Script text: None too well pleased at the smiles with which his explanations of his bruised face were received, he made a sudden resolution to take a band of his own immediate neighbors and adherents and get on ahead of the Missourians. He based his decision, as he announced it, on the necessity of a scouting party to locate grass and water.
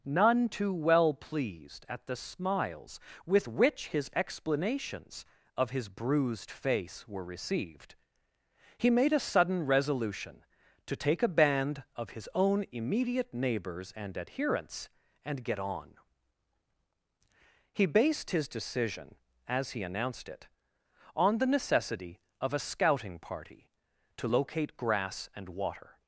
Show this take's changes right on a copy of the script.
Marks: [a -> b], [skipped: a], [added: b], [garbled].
None too well pleased at the smiles with which his explanations of his bruised face were received, he made a sudden resolution to take a band of his own immediate neighbors and adherents and get on [skipped: ahead of the Missourians.] He based his decision, as he announced it, on the necessity of a scouting party to locate grass and water.